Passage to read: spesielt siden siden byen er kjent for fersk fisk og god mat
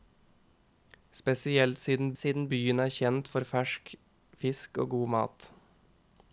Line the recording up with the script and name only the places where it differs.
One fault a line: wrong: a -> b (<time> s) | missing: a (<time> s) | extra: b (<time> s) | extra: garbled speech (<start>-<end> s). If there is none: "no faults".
no faults